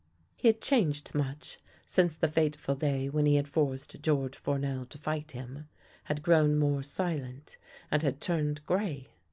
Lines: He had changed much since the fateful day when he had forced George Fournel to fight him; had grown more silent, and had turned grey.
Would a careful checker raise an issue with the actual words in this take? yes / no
no